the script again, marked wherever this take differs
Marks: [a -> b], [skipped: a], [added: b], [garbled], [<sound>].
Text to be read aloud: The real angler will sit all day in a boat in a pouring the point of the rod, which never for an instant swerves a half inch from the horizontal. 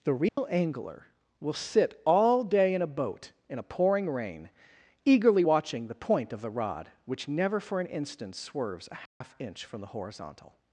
The real [dropout] angler will sit all day in a boat in a pouring [added: rain eagerly watching] the point of the rod, which never for an instant swerves a half [dropout] inch from the horizontal.